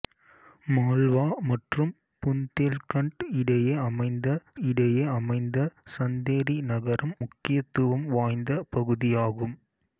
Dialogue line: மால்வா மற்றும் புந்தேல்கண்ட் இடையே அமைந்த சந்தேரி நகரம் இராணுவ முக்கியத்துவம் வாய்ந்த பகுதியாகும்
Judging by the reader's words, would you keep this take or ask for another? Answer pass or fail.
fail